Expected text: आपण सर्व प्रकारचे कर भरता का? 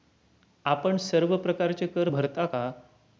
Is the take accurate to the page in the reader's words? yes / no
yes